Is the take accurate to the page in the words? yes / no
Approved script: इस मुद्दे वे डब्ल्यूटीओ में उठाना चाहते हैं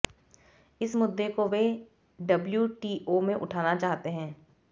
no